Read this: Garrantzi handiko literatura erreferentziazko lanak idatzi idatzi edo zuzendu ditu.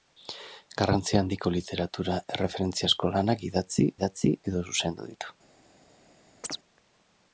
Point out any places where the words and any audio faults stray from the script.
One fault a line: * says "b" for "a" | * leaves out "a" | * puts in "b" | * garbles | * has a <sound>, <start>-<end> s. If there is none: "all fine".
* has a chirp, 6.4-6.6 s